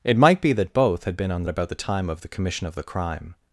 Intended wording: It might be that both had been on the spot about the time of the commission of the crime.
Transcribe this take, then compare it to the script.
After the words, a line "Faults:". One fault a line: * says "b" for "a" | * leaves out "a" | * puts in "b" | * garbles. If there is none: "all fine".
It might be that both had been on the about the time of the commission of the crime.
Faults:
* leaves out "spot"